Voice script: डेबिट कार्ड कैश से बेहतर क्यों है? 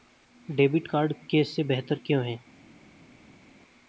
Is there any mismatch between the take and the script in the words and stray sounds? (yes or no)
no